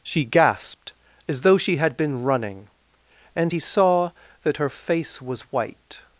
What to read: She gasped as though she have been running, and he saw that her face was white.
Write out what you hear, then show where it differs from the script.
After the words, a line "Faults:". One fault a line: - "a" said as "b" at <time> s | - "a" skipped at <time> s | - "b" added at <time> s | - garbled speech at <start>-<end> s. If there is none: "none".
She gasped as though she had been running, and he saw that her face was white.
Faults:
- "have" said as "had" at 1.8 s